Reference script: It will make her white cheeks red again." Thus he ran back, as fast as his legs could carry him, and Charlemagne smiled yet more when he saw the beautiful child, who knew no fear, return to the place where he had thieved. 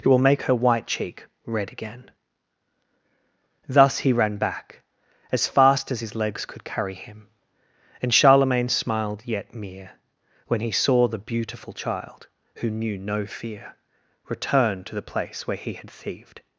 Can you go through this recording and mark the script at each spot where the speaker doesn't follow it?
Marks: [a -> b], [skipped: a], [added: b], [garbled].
It will make her white [cheeks -> cheek] red again." Thus he ran back, as fast as his legs could carry him, and Charlemagne smiled yet [more -> mere] when he saw the beautiful child, who knew no fear, return to the place where he had thieved.